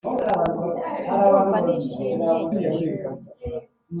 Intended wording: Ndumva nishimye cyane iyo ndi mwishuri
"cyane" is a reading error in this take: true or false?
true